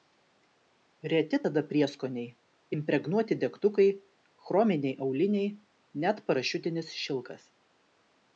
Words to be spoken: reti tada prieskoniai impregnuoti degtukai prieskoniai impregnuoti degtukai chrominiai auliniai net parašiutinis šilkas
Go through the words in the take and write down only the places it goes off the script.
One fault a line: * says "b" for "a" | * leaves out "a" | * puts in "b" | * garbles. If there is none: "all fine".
* leaves out "prieskoniai impregnuoti degtukai"